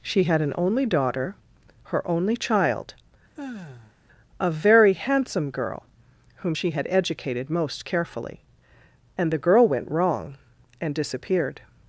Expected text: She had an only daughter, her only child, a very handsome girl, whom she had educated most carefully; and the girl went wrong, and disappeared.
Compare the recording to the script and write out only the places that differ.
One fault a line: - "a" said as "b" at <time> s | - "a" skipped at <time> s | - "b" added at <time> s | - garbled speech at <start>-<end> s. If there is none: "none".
none